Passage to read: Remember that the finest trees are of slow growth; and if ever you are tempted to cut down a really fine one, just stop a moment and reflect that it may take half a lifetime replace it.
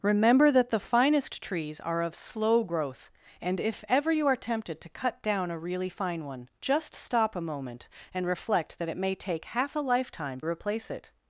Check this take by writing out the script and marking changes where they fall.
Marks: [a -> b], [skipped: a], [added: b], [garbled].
Remember that the finest trees are of slow growth; and if ever you are tempted to cut down a really fine one, just stop a moment and reflect that it may take half a lifetime replace it.